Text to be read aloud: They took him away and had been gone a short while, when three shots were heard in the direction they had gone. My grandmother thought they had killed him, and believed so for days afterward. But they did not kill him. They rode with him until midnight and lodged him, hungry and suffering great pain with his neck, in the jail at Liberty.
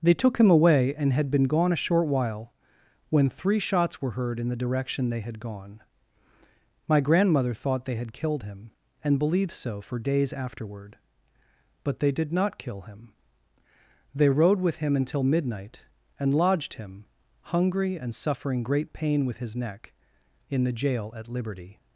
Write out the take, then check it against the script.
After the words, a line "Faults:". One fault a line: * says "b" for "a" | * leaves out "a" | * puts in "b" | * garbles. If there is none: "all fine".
They took him away and had been gone a short while, when three shots were heard in the direction they had gone. My grandmother thought they had killed him, and believed so for days afterward. But they did not kill him. They rode with him until midnight and lodged him, hungry and suffering great pain with his neck, in the jail at Liberty.
Faults:
all fine